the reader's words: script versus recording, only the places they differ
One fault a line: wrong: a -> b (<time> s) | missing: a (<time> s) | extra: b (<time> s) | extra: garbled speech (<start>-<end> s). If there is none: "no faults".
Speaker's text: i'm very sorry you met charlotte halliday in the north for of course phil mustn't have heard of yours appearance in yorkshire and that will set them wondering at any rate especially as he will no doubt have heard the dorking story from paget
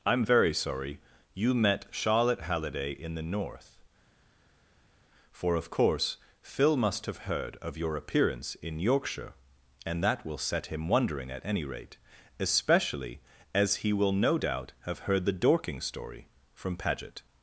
wrong: mustn't -> must (6.8 s)
wrong: yours -> your (7.8 s)
wrong: them -> him (10.7 s)